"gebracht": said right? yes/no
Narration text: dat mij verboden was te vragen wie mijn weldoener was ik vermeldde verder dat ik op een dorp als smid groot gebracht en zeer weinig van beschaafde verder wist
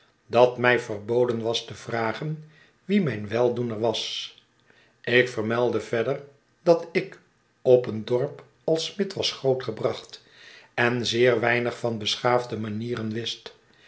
yes